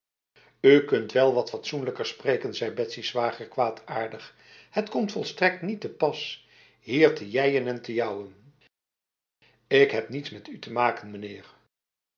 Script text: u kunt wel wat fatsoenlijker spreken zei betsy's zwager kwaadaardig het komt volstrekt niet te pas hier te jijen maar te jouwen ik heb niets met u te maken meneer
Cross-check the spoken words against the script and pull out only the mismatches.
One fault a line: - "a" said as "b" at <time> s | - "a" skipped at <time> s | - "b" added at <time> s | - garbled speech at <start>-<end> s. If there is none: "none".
- "maar" said as "en" at 7.7 s